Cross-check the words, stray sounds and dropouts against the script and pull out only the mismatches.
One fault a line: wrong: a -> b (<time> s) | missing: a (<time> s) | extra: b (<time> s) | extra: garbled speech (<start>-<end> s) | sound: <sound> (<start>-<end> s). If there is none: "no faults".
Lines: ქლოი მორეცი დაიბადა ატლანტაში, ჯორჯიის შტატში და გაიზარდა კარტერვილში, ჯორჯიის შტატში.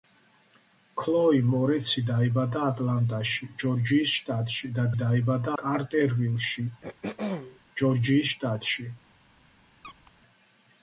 wrong: გაიზარდა -> დაიბადა (5.0 s)
sound: throat clearing (6.8-7.6 s)
sound: squeak (9.8-10.1 s)